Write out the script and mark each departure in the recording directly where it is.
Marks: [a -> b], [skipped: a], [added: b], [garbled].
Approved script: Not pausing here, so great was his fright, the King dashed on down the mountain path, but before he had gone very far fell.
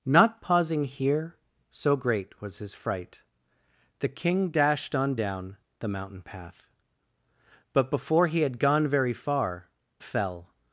Not pausing here, so great was his fright, the King dashed on down the mountain path, but before he had gone very far fell.